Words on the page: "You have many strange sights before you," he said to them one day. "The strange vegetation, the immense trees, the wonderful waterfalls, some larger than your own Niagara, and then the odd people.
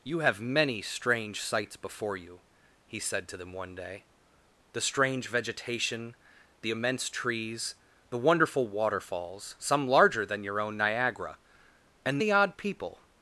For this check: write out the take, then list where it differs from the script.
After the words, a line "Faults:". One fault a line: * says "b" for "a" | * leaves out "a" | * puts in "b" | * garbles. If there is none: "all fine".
"You have many strange sights before you," he said to them one day. "The strange vegetation, the immense trees, the wonderful waterfalls, some larger than your own Niagara, and the odd people.
Faults:
* leaves out "then"